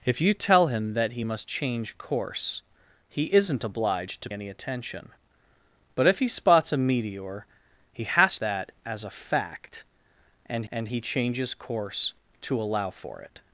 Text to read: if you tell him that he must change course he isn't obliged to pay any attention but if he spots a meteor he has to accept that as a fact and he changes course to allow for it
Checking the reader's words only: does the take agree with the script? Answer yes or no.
no